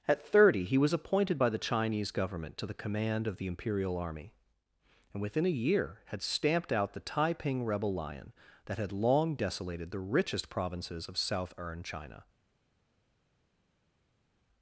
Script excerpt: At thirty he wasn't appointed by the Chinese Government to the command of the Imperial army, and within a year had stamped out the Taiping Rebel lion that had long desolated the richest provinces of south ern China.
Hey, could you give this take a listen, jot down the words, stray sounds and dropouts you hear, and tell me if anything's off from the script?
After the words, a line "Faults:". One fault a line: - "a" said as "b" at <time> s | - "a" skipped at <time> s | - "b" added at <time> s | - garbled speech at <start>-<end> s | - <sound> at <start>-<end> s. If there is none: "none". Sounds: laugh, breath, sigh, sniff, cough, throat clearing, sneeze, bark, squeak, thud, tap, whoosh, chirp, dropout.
At thirty he was appointed by the Chinese Government to the command of the Imperial army, and within a year had stamped out the Taiping Rebel lion that had long desolated the richest provinces of south ern China.
Faults:
- "wasn't" said as "was" at 0.8 s